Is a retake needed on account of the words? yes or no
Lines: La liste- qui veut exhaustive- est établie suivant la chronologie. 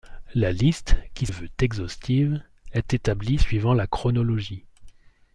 no